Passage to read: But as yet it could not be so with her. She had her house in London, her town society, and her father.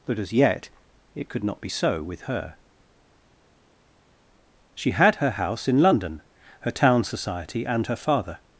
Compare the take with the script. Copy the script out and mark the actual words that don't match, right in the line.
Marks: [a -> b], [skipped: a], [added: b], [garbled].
But as yet it could not be so with her. She had her house in London, her town society, and her father.